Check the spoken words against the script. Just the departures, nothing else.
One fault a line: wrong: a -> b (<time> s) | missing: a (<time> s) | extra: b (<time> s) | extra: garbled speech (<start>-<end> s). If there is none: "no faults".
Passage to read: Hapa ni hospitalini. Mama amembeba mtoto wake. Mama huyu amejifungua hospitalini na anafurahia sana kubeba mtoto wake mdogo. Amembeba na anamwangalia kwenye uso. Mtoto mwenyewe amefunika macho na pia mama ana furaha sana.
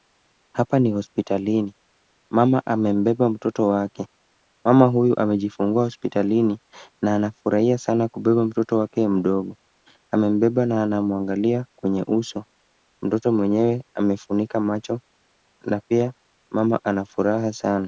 no faults